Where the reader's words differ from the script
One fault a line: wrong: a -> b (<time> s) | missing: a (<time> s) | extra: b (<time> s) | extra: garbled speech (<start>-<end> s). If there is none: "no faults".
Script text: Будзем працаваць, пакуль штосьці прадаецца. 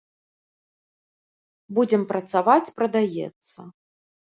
missing: пакуль штосьці (2.7 s)